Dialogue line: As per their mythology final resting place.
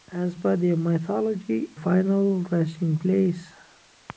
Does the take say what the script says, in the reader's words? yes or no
yes